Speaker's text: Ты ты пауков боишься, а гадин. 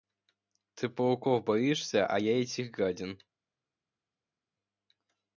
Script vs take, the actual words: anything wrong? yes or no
yes